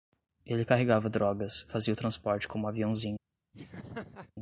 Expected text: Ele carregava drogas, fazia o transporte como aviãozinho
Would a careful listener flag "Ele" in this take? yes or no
no